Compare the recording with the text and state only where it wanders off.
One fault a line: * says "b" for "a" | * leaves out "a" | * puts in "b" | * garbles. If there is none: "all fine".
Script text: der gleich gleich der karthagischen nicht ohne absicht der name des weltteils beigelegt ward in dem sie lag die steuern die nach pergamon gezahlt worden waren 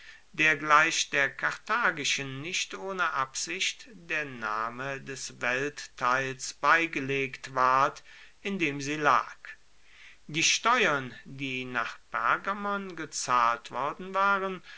* leaves out "gleich"